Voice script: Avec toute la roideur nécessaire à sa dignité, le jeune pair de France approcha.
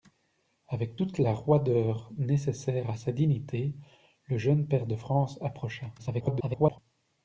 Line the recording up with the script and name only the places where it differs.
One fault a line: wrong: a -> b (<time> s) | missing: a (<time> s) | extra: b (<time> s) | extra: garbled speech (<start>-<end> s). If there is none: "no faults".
extra: garbled speech (6.0-6.8 s)